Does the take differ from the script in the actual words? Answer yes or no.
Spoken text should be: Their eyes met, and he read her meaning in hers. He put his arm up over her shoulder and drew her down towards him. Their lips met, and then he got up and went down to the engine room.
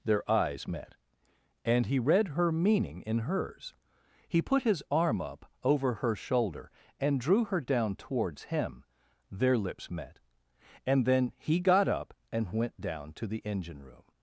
no